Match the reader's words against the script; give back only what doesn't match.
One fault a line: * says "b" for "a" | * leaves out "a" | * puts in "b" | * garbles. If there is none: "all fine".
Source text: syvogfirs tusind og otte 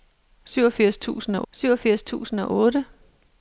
* puts in "syvogfirs tusind og"